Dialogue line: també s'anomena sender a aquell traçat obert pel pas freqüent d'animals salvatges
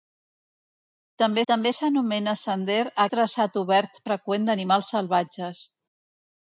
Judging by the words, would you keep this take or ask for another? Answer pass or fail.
fail